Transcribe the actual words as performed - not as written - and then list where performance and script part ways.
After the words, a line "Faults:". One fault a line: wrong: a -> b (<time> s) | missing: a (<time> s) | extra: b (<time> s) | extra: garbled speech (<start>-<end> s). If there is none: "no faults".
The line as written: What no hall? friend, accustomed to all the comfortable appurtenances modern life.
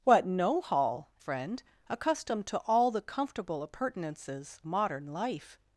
What no hall? friend, accustomed to all the comfortable appurtenances modern life.
Faults:
no faults